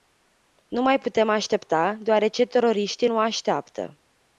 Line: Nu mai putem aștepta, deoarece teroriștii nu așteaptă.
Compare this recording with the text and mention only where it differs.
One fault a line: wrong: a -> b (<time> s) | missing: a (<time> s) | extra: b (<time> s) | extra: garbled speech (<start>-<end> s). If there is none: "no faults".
no faults